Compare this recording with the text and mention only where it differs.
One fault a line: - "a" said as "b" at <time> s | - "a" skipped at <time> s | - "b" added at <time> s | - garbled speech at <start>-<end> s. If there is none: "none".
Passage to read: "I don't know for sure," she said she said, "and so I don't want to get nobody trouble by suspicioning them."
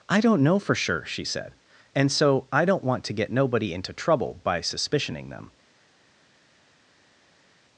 - "she said" skipped at 1.5 s
- "into" added at 3.7 s